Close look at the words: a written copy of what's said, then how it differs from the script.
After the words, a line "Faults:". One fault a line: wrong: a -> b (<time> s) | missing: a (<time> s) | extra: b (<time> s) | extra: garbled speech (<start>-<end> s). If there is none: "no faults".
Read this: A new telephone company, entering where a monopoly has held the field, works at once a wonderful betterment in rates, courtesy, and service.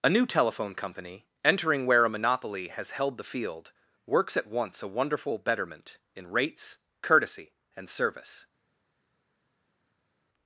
A new telephone company, entering where a monopoly has held the field, works at once a wonderful betterment in rates, courtesy, and service.
Faults:
no faults